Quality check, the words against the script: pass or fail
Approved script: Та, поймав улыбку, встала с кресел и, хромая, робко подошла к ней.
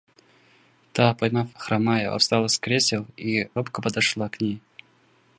fail